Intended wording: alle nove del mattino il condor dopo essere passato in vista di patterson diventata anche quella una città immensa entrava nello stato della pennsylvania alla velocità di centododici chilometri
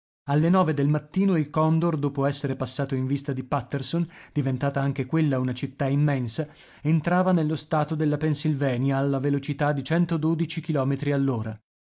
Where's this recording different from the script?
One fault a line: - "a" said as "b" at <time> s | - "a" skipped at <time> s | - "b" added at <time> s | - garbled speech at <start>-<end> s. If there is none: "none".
none